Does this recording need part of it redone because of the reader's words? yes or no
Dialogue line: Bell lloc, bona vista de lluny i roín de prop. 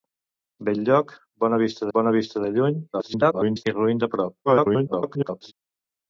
yes